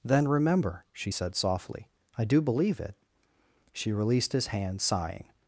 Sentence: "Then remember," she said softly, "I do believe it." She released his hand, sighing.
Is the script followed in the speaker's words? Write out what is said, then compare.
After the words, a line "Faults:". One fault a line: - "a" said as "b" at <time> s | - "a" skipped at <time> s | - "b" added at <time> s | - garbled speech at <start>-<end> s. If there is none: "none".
"Then remember," she said softly, "I do believe it." She released his hand, sighing.
Faults:
none